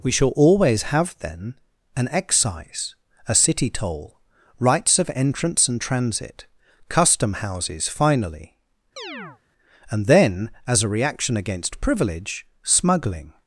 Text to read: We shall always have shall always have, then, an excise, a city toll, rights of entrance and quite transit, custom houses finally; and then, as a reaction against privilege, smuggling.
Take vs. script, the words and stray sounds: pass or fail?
fail